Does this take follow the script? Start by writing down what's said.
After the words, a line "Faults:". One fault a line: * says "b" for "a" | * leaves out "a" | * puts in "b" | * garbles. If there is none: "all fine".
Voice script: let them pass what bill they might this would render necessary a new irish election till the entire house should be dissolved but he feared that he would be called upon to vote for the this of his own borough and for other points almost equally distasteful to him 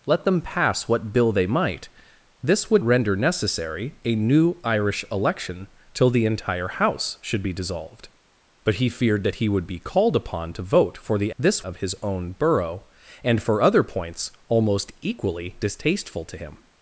let them pass what bill they might this would render necessary a new irish election till the entire house should be dissolved but he feared that he would be called upon to vote for the this of his own borough and for other points almost equally distasteful to him
Faults:
all fine